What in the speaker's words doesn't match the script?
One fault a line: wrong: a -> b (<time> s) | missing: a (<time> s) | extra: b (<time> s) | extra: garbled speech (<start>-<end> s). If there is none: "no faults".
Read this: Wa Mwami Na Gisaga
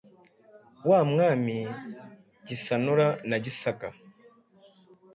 extra: Gisanura (2.5 s)